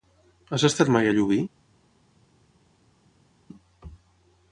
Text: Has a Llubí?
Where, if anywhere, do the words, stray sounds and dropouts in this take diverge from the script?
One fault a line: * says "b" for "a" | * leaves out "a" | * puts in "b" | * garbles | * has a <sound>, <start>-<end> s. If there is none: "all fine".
* puts in "estat mai"